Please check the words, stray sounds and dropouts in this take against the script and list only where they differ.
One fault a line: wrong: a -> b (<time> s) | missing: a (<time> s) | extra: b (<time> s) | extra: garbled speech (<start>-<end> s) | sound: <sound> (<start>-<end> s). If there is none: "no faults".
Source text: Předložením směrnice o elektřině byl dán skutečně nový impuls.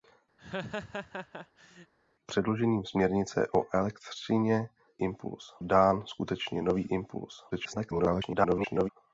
sound: laugh (0.4-1.9 s)
wrong: byl -> impuls (5.0 s)
extra: garbled speech (7.5-8.9 s)